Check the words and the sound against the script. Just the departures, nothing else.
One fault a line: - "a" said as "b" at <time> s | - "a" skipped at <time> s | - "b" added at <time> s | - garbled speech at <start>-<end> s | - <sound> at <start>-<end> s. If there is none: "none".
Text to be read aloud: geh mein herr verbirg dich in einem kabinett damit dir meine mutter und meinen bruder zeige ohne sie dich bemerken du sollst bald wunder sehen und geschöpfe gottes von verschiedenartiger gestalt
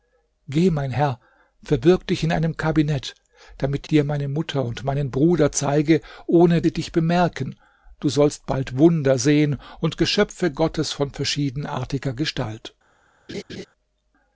- laugh at 13.3-13.7 s